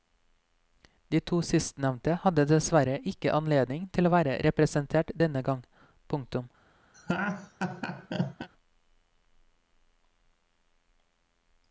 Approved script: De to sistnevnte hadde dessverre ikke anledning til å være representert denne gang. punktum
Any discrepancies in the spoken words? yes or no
no